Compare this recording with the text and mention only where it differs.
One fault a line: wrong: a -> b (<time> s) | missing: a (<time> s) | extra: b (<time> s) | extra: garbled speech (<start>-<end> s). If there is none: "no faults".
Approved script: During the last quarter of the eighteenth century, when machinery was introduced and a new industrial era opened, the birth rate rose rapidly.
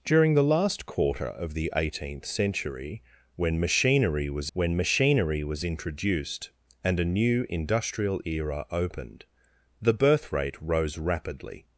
extra: when machinery was (4.5 s)